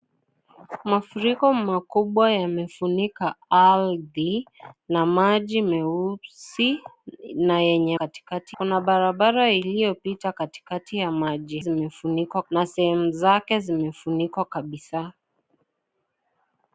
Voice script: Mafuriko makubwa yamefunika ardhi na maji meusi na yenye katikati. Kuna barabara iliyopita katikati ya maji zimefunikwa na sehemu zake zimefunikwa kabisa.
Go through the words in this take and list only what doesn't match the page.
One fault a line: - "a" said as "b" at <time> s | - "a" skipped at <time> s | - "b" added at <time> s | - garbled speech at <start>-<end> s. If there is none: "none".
none